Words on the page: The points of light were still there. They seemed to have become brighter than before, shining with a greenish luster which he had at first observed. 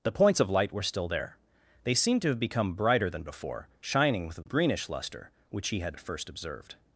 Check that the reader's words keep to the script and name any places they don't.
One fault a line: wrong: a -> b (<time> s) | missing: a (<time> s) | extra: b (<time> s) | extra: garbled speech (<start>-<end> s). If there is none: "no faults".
no faults